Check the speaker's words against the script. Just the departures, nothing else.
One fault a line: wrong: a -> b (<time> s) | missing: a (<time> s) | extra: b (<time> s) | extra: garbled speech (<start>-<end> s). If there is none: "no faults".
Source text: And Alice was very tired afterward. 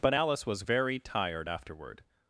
wrong: And -> But (0.0 s)